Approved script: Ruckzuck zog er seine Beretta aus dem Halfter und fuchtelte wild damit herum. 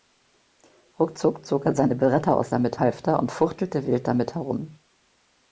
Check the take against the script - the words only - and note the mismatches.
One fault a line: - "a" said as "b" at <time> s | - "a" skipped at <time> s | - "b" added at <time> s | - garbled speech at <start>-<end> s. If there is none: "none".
- "dem" said as "damit" at 2.5 s